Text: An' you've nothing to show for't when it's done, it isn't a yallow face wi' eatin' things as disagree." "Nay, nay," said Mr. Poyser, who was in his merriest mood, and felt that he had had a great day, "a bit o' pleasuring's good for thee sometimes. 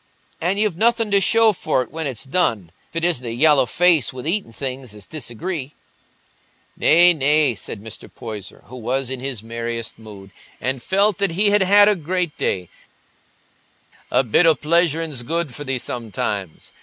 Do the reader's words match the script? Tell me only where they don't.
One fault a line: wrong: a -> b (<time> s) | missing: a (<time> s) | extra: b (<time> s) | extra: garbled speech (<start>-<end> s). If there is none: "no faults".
no faults